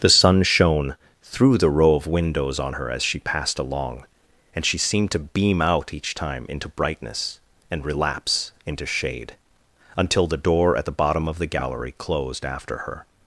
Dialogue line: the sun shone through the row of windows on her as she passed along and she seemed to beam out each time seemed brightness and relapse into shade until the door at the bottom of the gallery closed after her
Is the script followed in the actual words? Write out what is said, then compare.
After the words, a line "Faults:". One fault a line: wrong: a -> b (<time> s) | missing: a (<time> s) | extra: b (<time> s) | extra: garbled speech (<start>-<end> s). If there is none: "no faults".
the sun shone through the row of windows on her as she passed along and she seemed to beam out each time into brightness and relapse into shade until the door at the bottom of the gallery closed after her
Faults:
wrong: seemed -> into (6.5 s)